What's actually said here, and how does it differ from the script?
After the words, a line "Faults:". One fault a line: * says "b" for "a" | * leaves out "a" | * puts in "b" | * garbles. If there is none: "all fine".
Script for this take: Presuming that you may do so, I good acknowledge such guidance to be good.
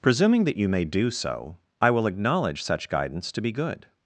Presuming that you may do so, I will acknowledge such guidance to be good.
Faults:
* says "will" for "good"